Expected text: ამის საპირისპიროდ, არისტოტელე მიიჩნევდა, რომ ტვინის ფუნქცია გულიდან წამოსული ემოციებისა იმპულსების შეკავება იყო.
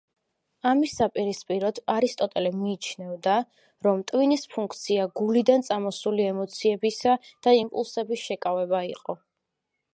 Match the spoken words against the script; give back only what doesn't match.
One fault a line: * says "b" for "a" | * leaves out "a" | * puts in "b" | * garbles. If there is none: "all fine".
* puts in "და"